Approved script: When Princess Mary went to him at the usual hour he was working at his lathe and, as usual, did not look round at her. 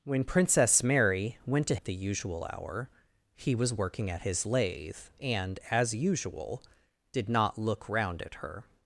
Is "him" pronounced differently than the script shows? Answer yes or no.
yes